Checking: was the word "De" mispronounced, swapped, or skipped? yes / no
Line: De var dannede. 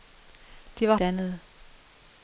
no